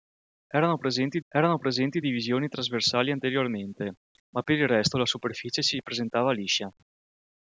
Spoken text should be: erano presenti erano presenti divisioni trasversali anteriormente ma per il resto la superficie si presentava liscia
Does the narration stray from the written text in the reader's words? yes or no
no